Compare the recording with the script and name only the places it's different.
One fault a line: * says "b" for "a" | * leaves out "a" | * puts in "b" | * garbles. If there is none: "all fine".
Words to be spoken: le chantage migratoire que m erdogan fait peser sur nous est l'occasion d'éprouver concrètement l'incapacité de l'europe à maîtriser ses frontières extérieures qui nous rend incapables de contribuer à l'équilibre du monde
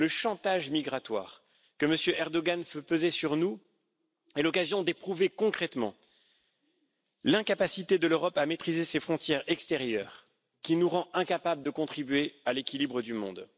all fine